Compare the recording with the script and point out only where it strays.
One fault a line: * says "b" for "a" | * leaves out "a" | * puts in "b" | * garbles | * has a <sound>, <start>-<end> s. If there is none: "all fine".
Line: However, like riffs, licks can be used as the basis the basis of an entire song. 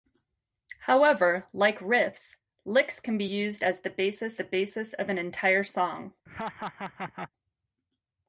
* has a laugh, 6.3-7.3 s